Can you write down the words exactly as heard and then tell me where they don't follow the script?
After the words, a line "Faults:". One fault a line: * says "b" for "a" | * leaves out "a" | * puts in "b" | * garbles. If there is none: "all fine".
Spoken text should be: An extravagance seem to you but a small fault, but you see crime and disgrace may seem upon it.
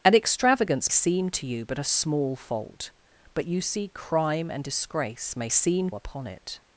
An extravagance seem to you but a small fault, but you see crime and disgrace may seem upon it.
Faults:
all fine